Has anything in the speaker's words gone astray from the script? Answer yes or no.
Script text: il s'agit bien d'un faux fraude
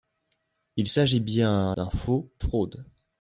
no